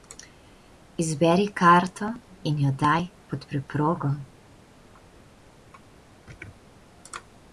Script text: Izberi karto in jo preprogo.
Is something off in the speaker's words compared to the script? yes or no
yes